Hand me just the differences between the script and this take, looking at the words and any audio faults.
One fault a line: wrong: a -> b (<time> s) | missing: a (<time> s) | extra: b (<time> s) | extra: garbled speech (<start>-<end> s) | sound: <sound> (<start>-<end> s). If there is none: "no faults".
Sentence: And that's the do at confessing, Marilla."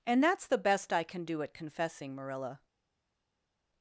extra: best I can (0.6 s)